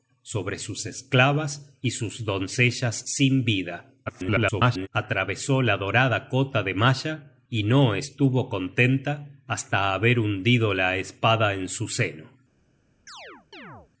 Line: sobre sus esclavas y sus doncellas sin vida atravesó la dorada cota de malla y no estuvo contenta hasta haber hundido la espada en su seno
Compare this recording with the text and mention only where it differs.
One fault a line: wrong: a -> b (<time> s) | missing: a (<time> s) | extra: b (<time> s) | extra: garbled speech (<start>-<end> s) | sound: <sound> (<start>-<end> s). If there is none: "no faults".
extra: garbled speech (4.1-4.9 s)
sound: chirp (13.1-13.9 s)